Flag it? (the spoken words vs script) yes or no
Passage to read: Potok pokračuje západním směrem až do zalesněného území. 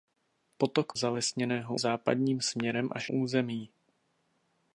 yes